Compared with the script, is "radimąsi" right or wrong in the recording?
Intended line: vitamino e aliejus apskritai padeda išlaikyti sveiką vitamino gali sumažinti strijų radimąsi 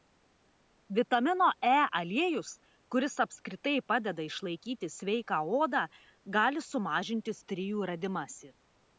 right